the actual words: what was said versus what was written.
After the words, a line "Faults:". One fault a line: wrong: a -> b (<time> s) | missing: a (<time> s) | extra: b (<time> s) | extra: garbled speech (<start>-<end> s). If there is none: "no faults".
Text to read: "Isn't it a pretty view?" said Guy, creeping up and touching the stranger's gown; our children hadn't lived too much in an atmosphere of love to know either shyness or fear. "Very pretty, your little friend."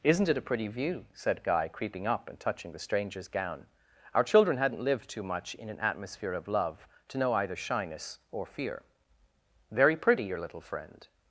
"Isn't it a pretty view?" said Guy, creeping up and touching the stranger's gown; our children hadn't lived too much in an atmosphere of love to know either shyness or fear. "Very pretty, your little friend."
Faults:
no faults